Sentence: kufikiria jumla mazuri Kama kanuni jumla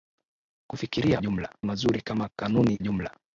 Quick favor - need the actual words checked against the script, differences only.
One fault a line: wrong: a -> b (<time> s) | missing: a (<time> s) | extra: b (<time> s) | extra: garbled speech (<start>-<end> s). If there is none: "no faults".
no faults